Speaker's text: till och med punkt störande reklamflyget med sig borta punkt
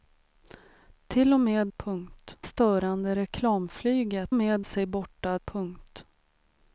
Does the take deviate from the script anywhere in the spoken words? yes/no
no